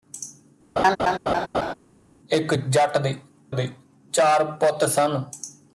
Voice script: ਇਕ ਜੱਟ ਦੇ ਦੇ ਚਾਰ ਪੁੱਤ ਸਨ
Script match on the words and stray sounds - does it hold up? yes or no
no